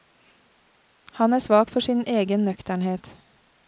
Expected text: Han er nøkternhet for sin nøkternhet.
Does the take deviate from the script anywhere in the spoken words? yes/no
yes